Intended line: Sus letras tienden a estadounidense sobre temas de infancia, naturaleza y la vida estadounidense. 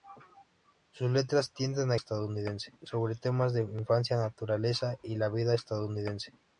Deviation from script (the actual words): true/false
false